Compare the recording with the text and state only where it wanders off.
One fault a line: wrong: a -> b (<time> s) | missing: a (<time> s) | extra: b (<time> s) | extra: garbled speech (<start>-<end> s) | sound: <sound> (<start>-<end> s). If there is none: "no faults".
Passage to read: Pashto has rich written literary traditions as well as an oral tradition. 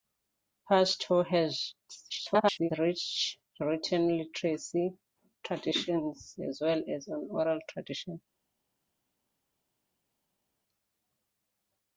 extra: garbled speech (2.1-2.7 s)